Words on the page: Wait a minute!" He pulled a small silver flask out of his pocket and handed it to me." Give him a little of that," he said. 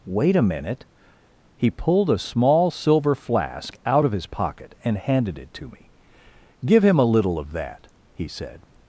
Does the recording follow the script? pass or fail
pass